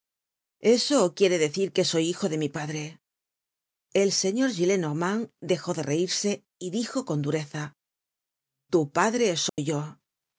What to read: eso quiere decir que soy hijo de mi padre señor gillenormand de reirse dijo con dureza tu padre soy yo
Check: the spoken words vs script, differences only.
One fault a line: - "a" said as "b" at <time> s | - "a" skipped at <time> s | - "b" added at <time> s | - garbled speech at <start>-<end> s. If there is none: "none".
- "el" added at 3.9 s
- "dejó" added at 5.4 s
- "y" added at 6.6 s